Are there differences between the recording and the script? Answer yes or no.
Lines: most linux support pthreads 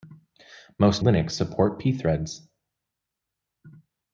no